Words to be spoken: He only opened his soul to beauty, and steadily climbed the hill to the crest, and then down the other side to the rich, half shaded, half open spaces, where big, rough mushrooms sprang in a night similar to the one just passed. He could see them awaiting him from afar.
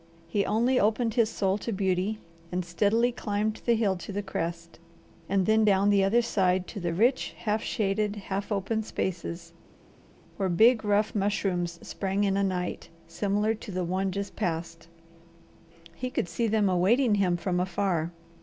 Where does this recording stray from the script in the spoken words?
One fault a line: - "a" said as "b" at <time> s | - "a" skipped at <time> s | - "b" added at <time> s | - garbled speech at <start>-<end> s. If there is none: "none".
none